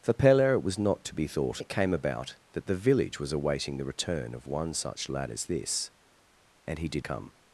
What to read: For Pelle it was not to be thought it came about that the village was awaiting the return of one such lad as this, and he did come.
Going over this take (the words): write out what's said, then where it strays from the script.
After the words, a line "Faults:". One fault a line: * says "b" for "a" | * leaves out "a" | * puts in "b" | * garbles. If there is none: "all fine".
For Pelle it was not to be thought it came about that the village was awaiting the return of one such lad as this, and he did come.
Faults:
all fine